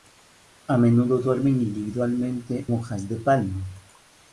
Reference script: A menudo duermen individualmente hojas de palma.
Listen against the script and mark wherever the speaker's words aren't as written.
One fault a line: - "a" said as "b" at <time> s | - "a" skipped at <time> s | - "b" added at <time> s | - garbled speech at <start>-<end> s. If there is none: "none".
none